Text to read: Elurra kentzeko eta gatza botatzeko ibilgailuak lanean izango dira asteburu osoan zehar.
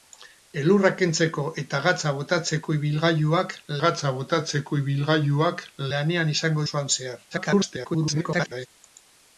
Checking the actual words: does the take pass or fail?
fail